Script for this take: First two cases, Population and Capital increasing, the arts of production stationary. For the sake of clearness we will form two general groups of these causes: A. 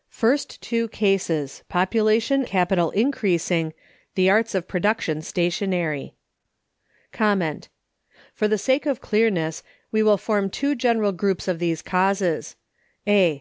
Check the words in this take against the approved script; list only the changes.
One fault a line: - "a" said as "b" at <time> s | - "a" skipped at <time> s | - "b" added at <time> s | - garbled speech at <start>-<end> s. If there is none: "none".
- "and" skipped at 2.4 s